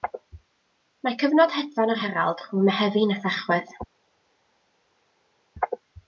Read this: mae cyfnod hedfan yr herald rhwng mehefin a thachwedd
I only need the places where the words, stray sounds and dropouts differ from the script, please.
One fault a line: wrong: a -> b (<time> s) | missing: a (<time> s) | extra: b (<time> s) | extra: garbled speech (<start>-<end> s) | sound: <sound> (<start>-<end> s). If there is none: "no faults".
no faults